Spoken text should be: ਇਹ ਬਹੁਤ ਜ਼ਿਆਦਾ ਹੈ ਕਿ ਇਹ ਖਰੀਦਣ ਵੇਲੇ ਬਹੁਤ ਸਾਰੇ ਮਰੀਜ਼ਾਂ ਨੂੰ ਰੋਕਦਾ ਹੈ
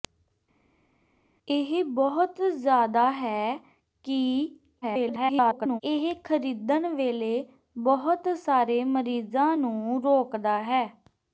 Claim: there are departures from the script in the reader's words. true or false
true